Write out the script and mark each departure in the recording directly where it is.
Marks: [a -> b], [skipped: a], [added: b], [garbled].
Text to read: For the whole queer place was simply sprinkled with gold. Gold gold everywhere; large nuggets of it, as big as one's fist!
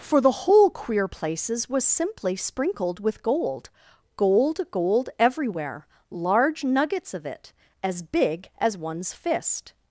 For the whole queer [place -> places] was simply sprinkled with gold. Gold gold everywhere; large nuggets of it, as big as one's fist!